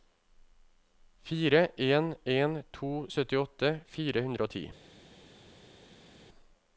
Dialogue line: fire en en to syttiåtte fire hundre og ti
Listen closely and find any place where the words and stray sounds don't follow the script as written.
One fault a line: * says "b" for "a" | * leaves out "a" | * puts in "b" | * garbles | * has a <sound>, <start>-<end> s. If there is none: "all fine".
all fine